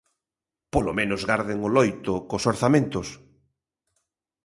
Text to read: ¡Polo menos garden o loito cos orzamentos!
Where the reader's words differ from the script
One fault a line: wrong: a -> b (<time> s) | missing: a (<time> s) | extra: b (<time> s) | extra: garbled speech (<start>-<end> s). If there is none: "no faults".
no faults